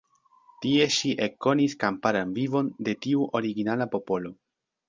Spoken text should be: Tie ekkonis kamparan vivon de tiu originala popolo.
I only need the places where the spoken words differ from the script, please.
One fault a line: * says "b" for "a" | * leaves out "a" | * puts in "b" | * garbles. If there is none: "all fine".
* puts in "ŝi"